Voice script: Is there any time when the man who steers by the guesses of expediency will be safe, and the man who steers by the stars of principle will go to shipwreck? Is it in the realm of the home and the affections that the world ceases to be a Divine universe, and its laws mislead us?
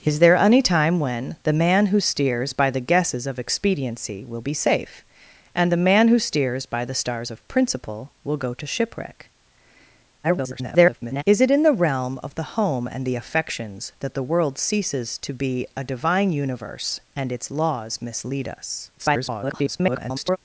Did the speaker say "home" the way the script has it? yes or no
yes